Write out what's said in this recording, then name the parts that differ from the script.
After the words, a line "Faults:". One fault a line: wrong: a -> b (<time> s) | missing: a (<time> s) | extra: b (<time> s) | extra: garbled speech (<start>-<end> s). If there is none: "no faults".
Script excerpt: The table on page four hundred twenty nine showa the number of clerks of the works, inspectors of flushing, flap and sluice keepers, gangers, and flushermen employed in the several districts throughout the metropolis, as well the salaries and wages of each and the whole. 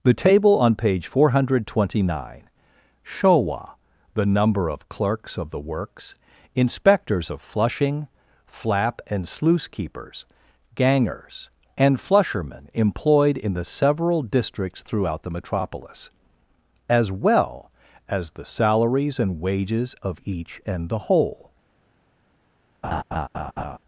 The table on page four hundred twenty nine showa the number of clerks of the works, inspectors of flushing, flap and sluice keepers, gangers, and flushermen employed in the several districts throughout the metropolis, as well as the salaries and wages of each and the whole.
Faults:
extra: as (18.1 s)